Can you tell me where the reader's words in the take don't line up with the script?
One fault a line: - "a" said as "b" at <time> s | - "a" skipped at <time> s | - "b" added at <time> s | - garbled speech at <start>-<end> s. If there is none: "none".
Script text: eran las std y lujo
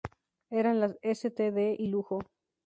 none